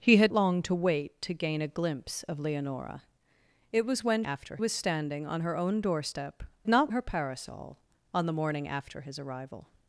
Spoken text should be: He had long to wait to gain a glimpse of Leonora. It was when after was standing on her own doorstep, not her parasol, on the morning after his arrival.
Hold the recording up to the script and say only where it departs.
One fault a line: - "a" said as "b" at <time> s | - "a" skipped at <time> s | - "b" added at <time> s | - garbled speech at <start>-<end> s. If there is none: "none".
none